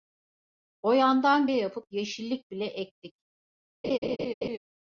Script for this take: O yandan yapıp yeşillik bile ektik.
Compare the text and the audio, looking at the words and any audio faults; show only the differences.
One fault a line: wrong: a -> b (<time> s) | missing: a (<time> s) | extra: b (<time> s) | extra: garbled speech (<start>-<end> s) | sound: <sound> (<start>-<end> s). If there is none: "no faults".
sound: laugh (3.8-4.6 s)